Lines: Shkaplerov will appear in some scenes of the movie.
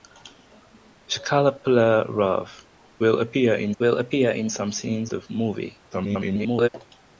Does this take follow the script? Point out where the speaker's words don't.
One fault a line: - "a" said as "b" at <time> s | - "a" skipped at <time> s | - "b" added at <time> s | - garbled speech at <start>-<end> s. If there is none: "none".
- "will appear in" added at 3.8 s
- "of" skipped at 5.1 s
- garbled speech at 5.9-6.7 s